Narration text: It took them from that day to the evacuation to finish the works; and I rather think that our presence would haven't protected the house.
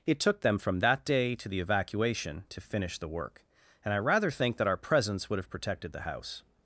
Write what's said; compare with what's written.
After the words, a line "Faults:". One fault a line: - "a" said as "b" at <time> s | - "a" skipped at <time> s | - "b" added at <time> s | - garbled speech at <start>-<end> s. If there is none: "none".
It took them from that day to the evacuation to finish the work; and I rather think that our presence would have protected the house.
Faults:
- "works" said as "work" at 3.1 s
- "haven't" said as "have" at 5.4 s